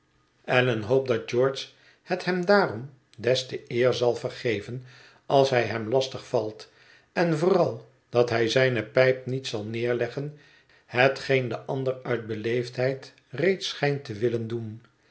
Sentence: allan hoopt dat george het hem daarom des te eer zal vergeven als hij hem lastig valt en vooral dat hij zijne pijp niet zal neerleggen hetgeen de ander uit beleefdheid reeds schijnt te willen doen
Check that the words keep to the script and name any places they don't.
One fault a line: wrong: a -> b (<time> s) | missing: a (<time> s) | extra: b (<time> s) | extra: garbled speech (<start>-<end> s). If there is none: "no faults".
no faults